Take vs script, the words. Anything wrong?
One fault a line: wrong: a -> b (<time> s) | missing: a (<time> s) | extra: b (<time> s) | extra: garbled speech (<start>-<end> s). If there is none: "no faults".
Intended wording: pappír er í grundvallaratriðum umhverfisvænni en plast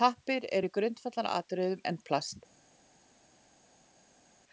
missing: umhverfisvænni (1.8 s)